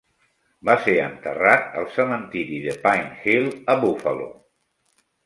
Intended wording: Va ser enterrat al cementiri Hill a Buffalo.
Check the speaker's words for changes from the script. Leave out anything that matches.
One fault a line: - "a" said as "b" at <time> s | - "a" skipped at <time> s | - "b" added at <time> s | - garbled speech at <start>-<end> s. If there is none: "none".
- "de Pine" added at 2.6 s